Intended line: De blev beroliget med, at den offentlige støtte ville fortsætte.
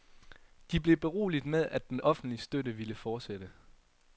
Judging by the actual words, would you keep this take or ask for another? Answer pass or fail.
pass